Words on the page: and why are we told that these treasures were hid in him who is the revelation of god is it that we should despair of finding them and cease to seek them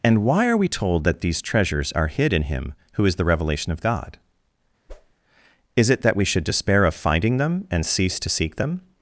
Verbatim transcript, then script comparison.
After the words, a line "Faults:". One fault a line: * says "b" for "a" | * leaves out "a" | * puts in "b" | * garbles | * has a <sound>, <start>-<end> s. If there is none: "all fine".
and why are we told that these treasures are hid in him who is the revelation of god is it that we should despair of finding them and cease to seek them
Faults:
* says "are" for "were"
* has a whoosh, 4.9-5.1 s